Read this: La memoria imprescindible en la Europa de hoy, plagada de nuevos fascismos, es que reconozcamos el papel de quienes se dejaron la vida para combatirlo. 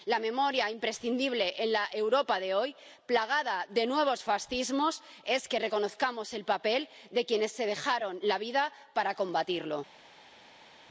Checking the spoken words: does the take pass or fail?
pass